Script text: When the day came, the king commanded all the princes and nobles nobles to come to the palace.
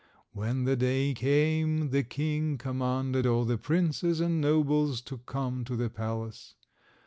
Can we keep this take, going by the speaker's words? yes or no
no